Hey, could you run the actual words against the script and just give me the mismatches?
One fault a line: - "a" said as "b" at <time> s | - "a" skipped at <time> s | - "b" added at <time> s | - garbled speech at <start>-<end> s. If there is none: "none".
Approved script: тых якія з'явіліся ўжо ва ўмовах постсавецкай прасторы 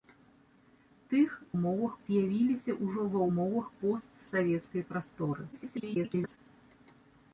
- "якія" said as "ўмовах" at 1.6 s
- garbled speech at 5.5-6.4 s